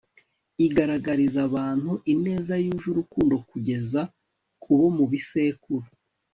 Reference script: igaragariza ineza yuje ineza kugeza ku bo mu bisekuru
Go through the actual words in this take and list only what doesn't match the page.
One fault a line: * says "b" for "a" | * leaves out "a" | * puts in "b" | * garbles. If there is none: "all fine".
* puts in "abantu"
* says "urukundo" for "ineza"